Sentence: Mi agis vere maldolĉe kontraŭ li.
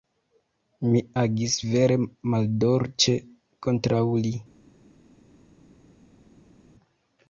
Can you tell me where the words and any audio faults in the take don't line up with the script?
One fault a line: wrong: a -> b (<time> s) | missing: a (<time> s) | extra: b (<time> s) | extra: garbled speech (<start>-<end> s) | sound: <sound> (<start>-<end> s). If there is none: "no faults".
no faults